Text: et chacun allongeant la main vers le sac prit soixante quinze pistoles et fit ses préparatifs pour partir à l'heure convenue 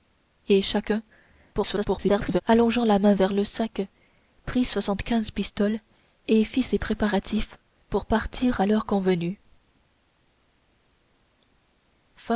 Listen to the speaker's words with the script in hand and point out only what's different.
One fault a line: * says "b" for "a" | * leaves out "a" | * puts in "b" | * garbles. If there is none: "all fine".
* garbles